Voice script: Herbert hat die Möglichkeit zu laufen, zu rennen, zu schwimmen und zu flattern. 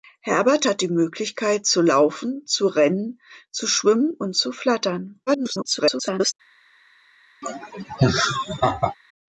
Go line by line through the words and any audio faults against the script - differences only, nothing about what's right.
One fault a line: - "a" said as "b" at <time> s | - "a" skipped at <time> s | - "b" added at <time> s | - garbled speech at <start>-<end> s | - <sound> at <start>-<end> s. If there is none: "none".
- garbled speech at 5.3-6.3 s
- laugh at 7.4-9.0 s